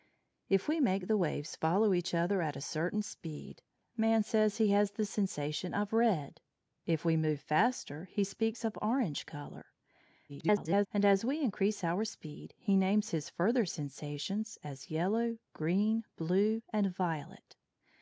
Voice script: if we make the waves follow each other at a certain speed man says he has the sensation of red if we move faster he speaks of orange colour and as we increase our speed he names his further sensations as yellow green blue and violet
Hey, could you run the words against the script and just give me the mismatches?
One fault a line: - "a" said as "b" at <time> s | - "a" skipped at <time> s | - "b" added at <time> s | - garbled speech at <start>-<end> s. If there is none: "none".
- garbled speech at 10.3-10.9 s